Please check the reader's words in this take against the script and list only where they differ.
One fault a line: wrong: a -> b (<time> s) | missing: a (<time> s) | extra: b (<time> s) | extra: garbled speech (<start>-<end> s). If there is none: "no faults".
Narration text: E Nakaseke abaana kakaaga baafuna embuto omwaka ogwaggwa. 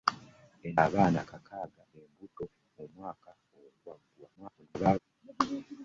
missing: Nakaseke (0.7 s)
missing: baafuna (1.8 s)
extra: garbled speech (4.4-5.0 s)